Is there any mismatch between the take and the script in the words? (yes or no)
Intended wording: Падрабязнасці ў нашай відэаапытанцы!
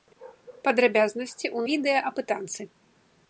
yes